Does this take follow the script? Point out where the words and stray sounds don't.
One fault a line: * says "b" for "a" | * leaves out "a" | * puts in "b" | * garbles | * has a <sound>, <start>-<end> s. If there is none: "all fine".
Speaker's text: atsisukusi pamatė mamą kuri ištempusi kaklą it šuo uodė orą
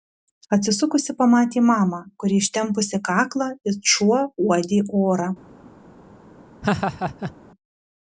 * has a laugh, 6.6-7.3 s